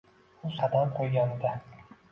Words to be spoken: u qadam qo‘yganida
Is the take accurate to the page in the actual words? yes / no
yes